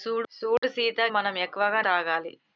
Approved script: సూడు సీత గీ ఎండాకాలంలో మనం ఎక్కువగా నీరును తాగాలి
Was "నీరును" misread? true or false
true